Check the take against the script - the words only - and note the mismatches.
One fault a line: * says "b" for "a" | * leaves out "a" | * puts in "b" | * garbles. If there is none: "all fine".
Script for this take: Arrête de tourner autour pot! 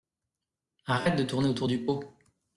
* puts in "du"